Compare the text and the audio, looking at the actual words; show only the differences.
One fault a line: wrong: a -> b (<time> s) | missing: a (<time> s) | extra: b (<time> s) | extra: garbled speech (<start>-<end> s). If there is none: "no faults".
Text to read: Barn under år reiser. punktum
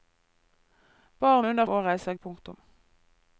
no faults